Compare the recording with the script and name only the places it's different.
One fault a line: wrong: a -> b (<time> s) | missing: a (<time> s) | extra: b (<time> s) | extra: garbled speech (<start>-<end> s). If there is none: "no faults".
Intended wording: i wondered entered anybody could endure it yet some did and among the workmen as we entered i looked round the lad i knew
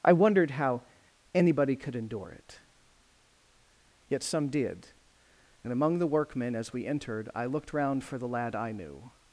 wrong: entered -> how (0.5 s)
extra: for (8.0 s)